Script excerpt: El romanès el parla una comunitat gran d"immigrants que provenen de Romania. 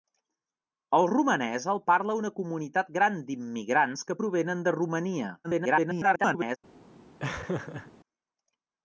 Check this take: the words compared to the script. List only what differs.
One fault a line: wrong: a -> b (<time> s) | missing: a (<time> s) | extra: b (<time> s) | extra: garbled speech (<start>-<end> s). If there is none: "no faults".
extra: garbled speech (5.4-6.6 s)